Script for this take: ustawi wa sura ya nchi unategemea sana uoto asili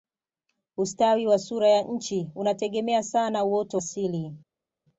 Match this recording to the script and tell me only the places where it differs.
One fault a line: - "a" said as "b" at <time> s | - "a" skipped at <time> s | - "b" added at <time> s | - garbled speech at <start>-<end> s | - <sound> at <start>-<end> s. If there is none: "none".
none